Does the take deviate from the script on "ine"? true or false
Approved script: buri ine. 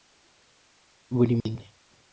false